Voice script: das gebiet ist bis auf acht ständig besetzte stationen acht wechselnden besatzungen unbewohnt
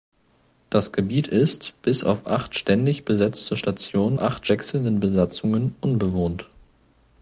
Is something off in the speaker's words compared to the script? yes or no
no